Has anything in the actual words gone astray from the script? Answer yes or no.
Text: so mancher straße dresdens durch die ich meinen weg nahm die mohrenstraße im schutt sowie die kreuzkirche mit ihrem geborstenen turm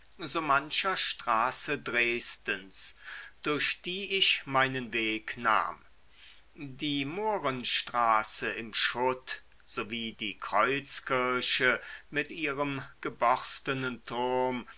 no